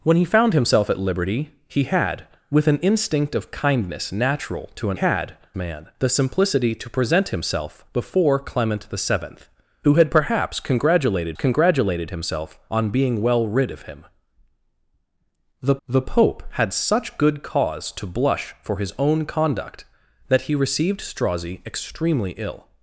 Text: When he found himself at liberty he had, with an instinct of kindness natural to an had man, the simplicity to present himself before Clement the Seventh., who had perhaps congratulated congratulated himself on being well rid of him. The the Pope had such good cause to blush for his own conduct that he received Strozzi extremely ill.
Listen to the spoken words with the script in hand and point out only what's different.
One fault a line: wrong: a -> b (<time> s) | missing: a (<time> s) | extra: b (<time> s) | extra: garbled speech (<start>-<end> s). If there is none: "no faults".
no faults